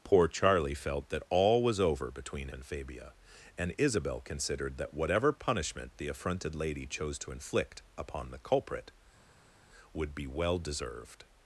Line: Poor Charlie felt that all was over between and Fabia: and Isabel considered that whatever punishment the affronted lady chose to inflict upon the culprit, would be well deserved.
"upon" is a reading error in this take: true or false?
false